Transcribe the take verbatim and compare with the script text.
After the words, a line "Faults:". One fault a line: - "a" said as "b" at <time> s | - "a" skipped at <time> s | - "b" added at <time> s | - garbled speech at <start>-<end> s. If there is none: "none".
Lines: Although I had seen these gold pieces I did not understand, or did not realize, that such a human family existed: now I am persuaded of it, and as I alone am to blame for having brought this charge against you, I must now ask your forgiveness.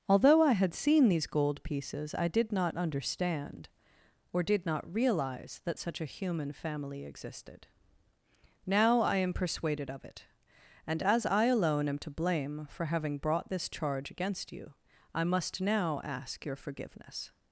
Although I had seen these gold pieces I did not understand, or did not realize, that such a human family existed: now I am persuaded of it, and as I alone am to blame for having brought this charge against you, I must now ask your forgiveness.
Faults:
none